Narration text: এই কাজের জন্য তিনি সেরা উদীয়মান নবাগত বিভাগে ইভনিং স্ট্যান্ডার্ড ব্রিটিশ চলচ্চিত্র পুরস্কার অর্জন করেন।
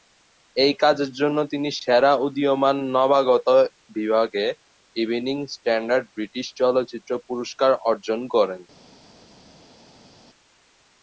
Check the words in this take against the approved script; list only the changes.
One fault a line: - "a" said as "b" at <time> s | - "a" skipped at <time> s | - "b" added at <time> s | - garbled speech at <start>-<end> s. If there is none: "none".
none